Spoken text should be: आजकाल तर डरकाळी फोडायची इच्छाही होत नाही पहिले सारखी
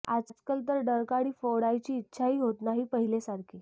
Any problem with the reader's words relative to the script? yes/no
no